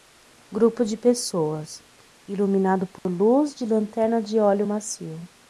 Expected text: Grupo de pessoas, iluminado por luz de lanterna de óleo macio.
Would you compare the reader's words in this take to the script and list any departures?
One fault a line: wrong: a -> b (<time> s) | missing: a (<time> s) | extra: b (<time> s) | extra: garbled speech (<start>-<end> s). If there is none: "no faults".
no faults